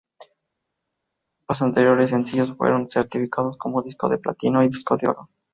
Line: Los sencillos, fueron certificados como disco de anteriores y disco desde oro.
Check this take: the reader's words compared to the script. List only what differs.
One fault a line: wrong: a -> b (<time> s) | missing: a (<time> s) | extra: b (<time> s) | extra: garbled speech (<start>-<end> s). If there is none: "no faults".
extra: anteriores (1.6 s)
wrong: anteriores -> platino (4.2 s)
wrong: desde -> de (5.0 s)